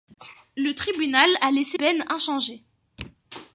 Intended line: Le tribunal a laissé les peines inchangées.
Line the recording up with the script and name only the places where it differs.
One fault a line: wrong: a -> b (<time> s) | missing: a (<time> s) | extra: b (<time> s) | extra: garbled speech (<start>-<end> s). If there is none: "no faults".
missing: les (1.8 s)